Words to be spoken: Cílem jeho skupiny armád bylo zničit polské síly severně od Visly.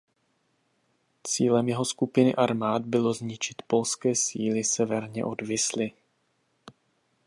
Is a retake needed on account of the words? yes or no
no